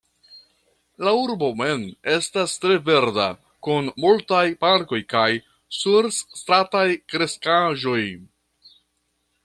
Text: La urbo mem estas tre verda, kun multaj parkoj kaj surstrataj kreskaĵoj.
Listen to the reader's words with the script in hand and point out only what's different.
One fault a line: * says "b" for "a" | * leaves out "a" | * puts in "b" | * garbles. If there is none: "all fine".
all fine